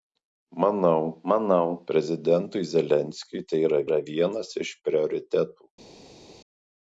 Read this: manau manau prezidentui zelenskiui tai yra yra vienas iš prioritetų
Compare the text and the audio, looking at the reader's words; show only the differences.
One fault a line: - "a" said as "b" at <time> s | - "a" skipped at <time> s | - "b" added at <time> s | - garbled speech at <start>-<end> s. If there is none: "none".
none